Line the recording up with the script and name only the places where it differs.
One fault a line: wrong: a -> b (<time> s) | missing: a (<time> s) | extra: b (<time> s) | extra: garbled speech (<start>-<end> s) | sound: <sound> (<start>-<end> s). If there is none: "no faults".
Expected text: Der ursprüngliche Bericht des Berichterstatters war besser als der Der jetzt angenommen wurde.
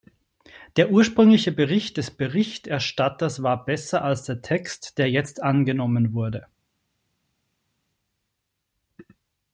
extra: Text (4.4 s)